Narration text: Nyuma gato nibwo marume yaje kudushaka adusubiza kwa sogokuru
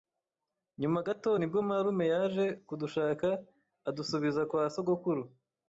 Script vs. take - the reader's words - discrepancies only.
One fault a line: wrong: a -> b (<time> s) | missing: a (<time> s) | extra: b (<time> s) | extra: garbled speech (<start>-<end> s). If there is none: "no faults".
no faults